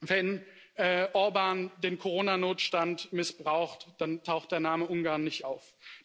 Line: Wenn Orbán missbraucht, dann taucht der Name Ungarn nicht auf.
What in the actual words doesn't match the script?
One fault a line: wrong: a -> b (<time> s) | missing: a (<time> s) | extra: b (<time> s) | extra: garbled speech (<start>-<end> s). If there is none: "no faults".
extra: den Corona Notstand (1.8 s)